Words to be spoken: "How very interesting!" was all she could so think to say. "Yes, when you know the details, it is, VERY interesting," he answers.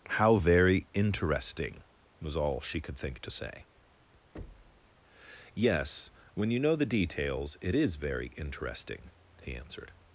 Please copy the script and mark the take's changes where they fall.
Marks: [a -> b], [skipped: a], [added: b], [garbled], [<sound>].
"How very interesting!" was all she could [skipped: so] think to say. [thud] "Yes, when you know the details, it is, VERY interesting," he [answers. -> answered]